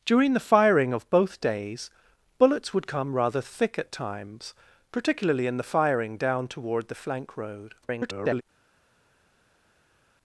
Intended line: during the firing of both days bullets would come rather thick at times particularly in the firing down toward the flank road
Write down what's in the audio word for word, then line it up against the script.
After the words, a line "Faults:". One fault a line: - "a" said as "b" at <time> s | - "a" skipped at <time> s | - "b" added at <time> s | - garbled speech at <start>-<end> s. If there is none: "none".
during the firing of both days bullets would come rather thick at times particularly in the firing down toward the flank road [garbled]
Faults:
- garbled speech at 7.8-8.4 s